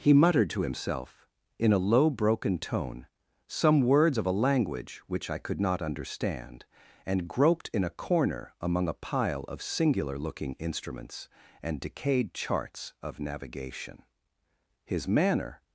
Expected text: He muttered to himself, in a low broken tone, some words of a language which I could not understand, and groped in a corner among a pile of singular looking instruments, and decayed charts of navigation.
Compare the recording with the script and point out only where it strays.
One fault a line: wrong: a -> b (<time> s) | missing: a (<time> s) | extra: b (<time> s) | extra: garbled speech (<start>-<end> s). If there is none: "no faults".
extra: His manner (14.8 s)